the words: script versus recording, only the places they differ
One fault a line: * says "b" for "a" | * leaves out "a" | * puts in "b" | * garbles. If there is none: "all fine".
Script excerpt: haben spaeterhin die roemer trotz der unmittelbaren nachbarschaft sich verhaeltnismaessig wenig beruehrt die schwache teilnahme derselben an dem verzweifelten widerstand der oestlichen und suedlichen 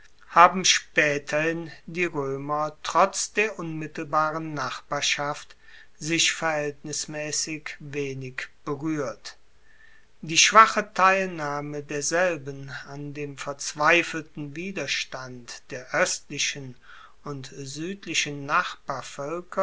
all fine